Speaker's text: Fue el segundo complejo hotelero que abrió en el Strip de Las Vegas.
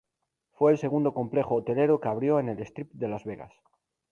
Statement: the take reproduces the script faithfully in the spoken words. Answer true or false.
true